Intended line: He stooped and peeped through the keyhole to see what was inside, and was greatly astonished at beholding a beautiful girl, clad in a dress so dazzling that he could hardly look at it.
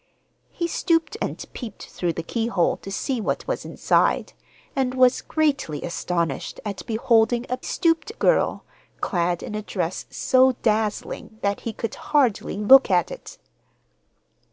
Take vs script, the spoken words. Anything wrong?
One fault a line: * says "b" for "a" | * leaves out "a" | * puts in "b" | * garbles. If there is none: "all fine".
* says "stooped" for "beautiful"